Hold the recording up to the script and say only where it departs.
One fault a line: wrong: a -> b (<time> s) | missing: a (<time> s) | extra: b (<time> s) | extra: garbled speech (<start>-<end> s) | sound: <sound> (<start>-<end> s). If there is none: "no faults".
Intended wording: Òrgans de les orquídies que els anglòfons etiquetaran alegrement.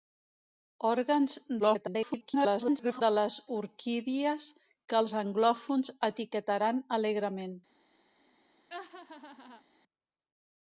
extra: garbled speech (1.6-3.0 s)
sound: laugh (8.7-9.6 s)